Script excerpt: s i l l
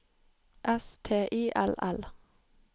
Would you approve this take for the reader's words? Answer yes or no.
no